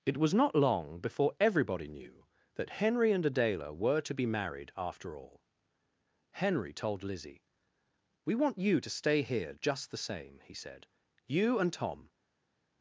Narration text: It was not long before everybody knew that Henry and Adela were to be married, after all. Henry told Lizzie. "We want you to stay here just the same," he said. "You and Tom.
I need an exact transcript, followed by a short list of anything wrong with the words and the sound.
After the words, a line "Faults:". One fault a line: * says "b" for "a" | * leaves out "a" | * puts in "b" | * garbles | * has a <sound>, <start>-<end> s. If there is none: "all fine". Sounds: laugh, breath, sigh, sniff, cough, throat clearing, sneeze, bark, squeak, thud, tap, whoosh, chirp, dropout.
It was not long before everybody knew that Henry and Adela were to be married, after all. Henry told Lizzie. "We want you to stay here just the same," he said. "You and Tom.
Faults:
all fine